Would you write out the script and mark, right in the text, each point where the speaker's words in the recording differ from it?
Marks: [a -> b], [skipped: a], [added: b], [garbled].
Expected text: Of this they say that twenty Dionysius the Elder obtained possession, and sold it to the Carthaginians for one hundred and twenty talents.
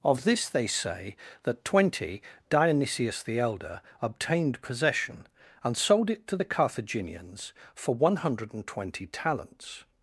Of this they say that twenty Dionysius the Elder obtained possession, and sold it to the Carthaginians for one hundred and twenty talents.